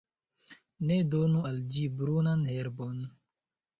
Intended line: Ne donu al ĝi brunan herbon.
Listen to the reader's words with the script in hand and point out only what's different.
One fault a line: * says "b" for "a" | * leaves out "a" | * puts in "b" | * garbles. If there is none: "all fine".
all fine